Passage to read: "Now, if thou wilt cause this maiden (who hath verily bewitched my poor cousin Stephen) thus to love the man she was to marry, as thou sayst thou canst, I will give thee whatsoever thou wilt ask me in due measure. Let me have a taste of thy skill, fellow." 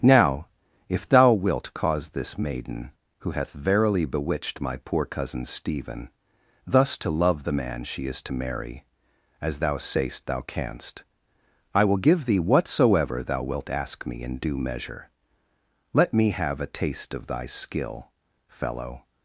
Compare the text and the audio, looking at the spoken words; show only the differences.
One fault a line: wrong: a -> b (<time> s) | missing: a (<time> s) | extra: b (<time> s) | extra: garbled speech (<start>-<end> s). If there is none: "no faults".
wrong: was -> is (8.1 s)